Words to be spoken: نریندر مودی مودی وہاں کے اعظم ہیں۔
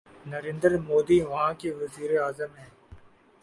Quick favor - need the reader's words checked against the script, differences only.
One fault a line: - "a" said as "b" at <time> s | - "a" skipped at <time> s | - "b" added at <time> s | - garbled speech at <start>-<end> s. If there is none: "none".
- "مودی" skipped at 1.2 s
- "وزیر" added at 1.8 s